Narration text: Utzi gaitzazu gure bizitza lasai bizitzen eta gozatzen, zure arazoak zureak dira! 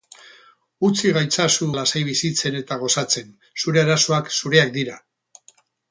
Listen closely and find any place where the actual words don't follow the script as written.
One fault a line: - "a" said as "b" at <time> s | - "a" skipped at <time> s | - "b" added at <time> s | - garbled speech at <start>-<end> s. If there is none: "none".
- "gure bizitza" skipped at 1.7 s